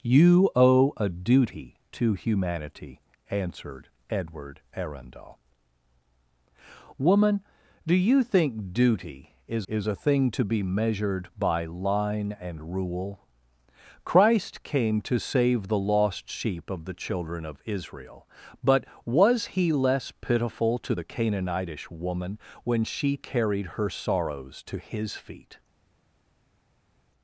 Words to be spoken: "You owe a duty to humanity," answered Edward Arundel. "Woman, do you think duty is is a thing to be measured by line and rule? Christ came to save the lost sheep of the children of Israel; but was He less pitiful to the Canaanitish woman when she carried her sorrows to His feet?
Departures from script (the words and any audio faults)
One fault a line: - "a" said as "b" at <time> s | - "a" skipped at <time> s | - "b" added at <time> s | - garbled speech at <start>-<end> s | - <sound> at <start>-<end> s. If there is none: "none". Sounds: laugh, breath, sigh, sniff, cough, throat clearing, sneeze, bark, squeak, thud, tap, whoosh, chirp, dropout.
none